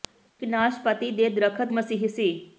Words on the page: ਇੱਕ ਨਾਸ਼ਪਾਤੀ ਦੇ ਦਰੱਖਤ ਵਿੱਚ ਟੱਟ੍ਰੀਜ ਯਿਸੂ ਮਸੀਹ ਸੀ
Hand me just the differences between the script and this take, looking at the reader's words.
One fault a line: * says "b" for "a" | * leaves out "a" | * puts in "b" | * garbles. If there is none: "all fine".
* leaves out "ਵਿੱਚ ਟੱਟ੍ਰੀਜ ਯਿਸੂ"